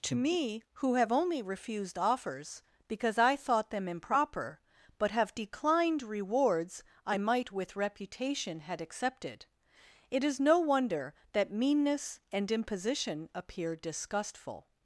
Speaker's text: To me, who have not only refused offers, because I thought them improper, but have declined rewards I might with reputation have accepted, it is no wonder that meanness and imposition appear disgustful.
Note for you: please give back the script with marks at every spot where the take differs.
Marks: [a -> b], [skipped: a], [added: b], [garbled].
To me, who have [skipped: not] only refused offers, because I thought them improper, but have declined rewards I might with reputation [have -> had] accepted, it is no wonder that meanness and imposition appear disgustful.